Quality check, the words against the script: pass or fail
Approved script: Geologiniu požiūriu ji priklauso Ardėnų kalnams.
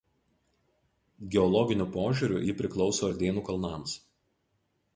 pass